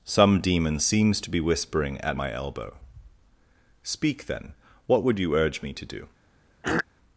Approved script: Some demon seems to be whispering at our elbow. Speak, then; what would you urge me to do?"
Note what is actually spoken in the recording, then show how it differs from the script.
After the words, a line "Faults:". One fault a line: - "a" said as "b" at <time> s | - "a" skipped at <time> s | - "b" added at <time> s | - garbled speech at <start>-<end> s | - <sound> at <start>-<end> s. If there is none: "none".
Some demon seems to be whispering at my elbow. Speak, then; what would you urge me to do?"
Faults:
- "our" said as "my" at 2.1 s
- throat clearing at 6.6-6.9 s